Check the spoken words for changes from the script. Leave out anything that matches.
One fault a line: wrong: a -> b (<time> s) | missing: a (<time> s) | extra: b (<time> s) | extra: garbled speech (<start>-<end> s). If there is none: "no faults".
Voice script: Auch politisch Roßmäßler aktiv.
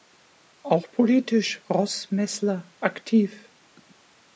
no faults